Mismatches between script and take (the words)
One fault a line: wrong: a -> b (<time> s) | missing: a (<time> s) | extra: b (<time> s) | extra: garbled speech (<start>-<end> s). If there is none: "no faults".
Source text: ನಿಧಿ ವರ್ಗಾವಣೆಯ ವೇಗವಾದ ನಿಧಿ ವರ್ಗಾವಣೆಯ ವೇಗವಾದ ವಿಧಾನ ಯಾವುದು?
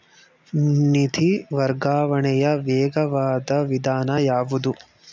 missing: ನಿಧಿ ವರ್ಗಾವಣೆಯ ವೇಗವಾದ (3.5 s)